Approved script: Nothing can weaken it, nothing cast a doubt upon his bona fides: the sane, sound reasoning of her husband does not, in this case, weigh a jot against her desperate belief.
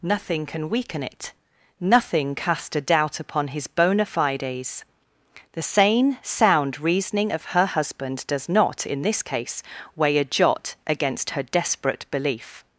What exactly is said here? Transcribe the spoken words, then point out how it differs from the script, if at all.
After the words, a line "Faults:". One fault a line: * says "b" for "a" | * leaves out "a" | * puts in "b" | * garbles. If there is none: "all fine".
Nothing can weaken it, nothing cast a doubt upon his bona fides: the sane, sound reasoning of her husband does not, in this case, weigh a jot against her desperate belief.
Faults:
all fine